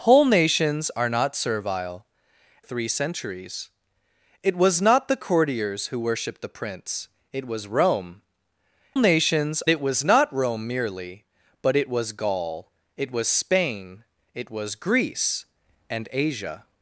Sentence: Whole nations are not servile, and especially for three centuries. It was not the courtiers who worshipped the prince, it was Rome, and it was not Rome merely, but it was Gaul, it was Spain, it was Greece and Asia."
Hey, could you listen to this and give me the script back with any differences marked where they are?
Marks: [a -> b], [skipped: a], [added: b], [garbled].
Whole nations are not servile, [skipped: and especially for] three centuries. It was not the courtiers who worshipped the prince, it was Rome, [and -> nations] it was not Rome merely, but it was Gaul, it was Spain, it was Greece and Asia."